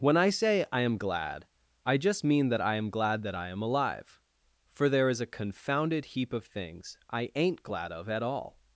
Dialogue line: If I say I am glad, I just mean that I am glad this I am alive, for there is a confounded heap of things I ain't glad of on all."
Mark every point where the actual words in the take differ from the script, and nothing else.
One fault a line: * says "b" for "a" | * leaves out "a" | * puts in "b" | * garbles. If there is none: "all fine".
* says "When" for "If"
* says "that" for "this"
* says "at" for "on"